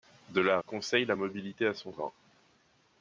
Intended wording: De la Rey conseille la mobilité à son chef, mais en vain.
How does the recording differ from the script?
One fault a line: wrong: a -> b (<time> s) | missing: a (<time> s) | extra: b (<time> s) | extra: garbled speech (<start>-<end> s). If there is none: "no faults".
missing: Rey (0.6 s)
missing: chef mais en (1.9 s)